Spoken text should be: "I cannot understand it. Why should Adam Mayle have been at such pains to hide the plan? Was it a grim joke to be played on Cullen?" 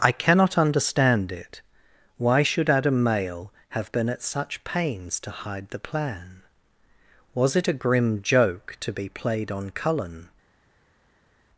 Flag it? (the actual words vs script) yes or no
no